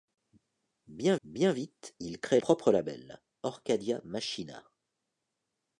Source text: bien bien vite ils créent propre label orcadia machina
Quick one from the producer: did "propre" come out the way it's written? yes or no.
yes